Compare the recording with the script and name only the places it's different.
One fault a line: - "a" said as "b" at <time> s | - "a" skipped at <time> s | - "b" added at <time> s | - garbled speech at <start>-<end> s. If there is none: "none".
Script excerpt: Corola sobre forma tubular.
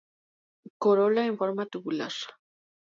- "sobre" said as "en" at 1.3 s